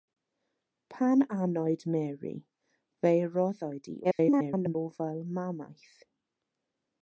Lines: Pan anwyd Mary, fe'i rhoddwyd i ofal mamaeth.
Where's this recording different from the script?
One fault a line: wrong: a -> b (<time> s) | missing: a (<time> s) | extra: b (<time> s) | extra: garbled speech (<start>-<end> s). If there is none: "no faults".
extra: garbled speech (4.0-4.8 s)